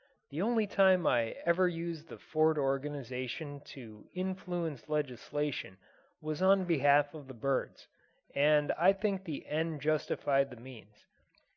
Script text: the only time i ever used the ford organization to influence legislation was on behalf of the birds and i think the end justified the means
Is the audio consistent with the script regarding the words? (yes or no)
yes